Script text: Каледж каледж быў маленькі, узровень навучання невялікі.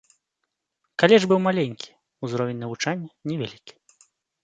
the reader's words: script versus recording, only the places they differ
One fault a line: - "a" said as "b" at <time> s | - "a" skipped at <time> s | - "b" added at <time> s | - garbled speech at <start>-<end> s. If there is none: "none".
- "каледж" skipped at 1.3 s